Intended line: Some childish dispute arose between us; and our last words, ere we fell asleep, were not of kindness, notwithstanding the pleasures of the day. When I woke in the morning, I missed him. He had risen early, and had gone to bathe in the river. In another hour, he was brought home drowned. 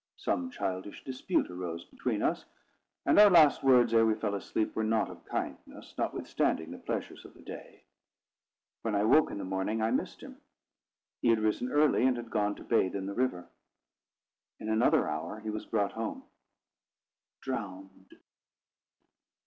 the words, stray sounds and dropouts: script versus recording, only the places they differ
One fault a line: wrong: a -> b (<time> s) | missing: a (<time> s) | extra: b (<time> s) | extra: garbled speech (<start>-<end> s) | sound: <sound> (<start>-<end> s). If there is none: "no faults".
no faults